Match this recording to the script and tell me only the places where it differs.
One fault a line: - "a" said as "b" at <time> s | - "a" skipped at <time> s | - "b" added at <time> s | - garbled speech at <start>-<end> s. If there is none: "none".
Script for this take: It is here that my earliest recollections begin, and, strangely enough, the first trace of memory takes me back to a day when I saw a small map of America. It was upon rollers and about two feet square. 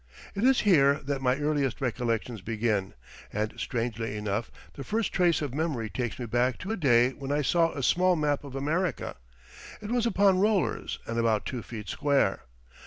none